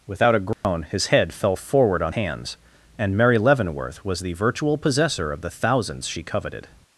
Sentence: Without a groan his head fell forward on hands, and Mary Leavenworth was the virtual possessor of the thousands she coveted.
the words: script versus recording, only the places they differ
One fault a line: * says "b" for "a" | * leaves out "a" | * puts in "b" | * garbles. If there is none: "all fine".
all fine